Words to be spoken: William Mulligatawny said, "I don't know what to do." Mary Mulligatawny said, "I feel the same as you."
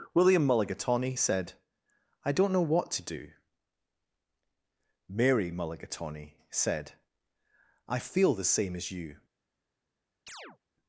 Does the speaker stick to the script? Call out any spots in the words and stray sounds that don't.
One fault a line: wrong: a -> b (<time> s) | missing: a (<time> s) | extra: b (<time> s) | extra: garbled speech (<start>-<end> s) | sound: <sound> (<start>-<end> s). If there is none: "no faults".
sound: chirp (10.3-10.6 s)